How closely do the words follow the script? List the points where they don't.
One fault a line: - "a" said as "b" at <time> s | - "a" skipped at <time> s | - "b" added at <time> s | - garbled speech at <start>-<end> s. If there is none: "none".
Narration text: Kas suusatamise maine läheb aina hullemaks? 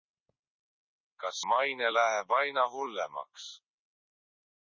- "suusatamise" skipped at 1.4 s